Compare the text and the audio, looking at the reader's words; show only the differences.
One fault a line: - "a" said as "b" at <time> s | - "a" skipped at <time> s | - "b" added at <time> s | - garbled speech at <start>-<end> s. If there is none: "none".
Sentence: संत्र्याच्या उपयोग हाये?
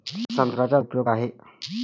none